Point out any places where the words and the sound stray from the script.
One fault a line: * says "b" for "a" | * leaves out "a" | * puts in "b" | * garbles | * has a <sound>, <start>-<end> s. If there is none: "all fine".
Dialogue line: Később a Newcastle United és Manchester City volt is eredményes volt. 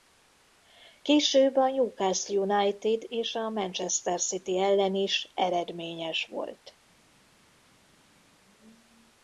* puts in "a"
* says "ellen" for "volt"